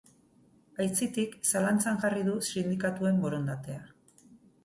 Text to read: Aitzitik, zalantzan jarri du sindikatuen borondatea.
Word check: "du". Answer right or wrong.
right